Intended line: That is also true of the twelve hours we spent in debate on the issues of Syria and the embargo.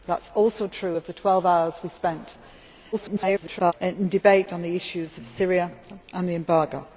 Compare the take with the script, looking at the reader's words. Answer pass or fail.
fail